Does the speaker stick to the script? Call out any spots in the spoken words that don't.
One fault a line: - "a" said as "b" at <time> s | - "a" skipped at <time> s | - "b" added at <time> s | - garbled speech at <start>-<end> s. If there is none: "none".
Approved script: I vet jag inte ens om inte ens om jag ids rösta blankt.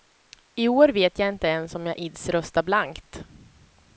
- "år" added at 0.7 s
- "inte ens om" skipped at 1.9 s